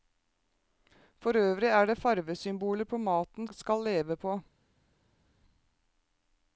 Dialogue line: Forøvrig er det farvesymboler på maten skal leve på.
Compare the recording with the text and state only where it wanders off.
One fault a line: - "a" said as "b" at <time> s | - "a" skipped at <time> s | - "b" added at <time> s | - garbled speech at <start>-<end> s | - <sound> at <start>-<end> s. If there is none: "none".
none